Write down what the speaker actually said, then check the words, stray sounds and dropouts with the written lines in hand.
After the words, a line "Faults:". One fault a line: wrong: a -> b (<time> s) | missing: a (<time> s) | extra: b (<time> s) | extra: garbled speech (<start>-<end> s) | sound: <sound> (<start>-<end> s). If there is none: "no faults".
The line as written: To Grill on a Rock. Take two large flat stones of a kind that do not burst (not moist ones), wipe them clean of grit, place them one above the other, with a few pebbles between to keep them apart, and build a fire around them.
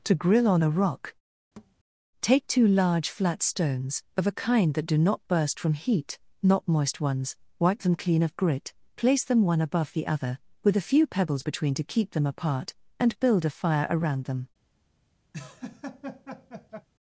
To Grill on a Rock. Take two large flat stones of a kind that do not burst from heat (not moist ones), wipe them clean of grit, place them one above the other, with a few pebbles between to keep them apart, and build a fire around them.
Faults:
sound: thud (1.6-1.7 s)
extra: from heat (5.6 s)
sound: laugh (15.3-16.9 s)